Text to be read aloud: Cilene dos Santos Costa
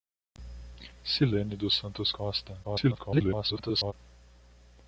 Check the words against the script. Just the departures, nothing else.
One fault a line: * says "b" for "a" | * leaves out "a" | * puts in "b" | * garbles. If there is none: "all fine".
* garbles